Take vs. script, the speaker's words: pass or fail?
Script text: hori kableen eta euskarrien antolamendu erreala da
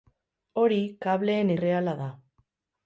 fail